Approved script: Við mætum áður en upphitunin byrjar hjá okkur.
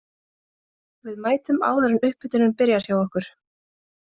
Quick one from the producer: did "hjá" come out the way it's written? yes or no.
yes